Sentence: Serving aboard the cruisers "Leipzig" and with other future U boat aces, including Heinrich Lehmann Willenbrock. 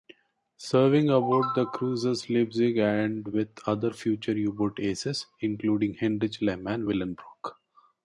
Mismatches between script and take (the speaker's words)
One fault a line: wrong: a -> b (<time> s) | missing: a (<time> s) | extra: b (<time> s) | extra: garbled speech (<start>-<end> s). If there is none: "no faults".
no faults